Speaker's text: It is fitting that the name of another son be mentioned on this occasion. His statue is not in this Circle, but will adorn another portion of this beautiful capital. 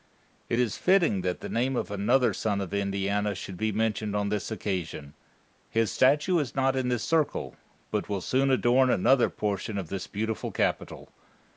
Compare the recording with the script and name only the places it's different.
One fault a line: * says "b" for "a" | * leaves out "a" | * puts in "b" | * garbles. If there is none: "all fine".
* puts in "of Indiana should"
* puts in "soon"